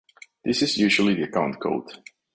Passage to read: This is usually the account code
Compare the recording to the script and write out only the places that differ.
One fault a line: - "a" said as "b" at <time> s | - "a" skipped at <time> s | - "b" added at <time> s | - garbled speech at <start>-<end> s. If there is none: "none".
none